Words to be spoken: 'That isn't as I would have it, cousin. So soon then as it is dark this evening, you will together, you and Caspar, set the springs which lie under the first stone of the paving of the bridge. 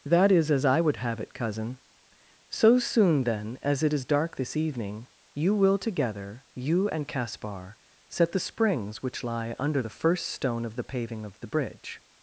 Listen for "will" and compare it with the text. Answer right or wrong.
right